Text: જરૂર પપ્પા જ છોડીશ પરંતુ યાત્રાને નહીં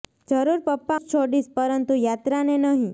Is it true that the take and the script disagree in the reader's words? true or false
false